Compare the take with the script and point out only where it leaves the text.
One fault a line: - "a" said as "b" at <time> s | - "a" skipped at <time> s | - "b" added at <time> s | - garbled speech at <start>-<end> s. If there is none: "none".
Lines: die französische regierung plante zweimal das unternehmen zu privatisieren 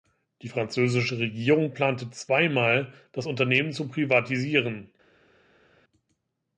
none